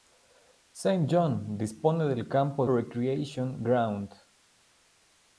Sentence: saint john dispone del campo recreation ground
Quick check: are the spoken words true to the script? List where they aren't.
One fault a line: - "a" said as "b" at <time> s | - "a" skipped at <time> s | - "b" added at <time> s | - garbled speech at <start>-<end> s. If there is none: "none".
none